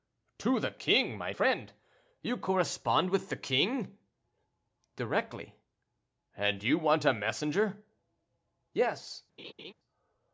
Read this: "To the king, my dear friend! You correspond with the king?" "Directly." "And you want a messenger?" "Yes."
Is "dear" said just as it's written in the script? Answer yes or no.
no